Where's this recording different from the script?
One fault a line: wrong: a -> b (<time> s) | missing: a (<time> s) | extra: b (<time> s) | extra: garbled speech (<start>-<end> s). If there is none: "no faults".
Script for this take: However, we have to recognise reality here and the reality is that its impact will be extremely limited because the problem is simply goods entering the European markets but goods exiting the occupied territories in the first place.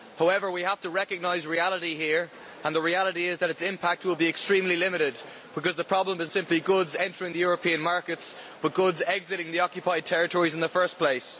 no faults